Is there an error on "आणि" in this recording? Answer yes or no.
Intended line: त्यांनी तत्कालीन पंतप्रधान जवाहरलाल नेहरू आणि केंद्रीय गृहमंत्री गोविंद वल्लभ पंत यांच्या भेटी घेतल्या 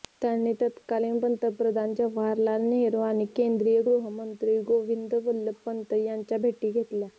no